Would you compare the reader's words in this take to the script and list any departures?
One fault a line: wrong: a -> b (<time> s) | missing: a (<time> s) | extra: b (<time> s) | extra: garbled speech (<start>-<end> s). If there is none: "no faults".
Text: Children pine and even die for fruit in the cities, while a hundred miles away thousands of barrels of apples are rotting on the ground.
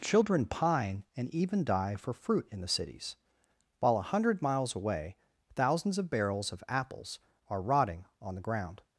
no faults